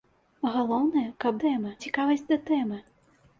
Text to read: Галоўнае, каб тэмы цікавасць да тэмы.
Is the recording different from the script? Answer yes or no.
no